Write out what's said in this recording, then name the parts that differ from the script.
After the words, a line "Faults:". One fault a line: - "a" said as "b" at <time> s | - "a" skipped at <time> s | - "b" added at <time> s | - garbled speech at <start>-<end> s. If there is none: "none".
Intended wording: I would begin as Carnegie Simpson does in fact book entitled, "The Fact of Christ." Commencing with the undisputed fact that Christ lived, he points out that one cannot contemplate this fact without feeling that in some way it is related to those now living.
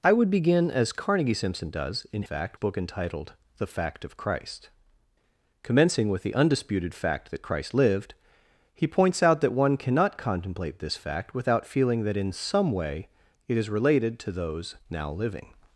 I would begin as Carnegie Simpson does in fact book entitled, "The Fact of Christ." Commencing with the undisputed fact that Christ lived, he points out that one cannot contemplate this fact without feeling that in some way it is related to those now living.
Faults:
none